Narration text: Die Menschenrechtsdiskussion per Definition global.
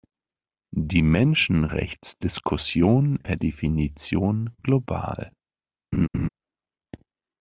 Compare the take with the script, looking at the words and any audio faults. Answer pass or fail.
fail